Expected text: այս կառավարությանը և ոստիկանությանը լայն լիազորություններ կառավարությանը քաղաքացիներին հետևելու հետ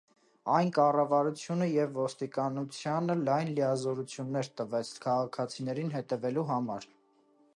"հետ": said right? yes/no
no